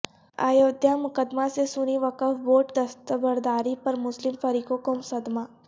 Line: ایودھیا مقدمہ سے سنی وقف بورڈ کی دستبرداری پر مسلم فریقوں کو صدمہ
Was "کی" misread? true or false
true